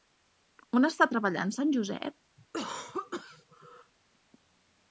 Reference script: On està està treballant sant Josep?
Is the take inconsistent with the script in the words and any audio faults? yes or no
yes